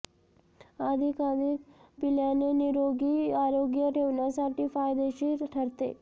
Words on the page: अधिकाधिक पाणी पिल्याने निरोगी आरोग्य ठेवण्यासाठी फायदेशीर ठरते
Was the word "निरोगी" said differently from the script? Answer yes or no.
no